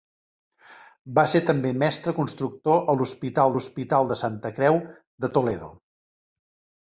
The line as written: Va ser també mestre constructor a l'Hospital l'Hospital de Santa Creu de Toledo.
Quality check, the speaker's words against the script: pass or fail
pass